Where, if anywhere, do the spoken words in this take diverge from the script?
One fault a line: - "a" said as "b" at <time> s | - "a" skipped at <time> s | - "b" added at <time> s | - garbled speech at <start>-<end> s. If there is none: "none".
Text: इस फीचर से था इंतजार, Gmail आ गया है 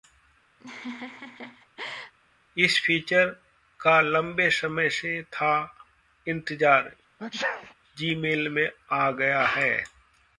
- "का लंबे समय" added at 3.8 s
- "में" added at 8.5 s